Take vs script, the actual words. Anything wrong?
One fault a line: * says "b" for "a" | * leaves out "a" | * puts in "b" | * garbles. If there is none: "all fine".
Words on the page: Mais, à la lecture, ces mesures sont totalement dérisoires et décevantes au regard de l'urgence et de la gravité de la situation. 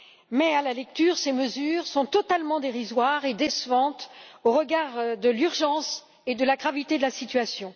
all fine